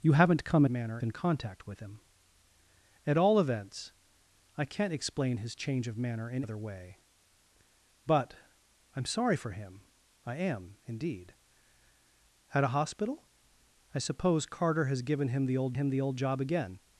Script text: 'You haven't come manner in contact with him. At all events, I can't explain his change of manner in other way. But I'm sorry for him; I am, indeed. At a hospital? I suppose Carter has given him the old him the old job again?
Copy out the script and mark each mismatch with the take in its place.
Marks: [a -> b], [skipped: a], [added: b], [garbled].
'You haven't come manner in contact with him. At all events, I can't explain his change of manner in other way. But I'm sorry for him; I am, indeed. At a hospital? I suppose Carter has given him the old him the old job again?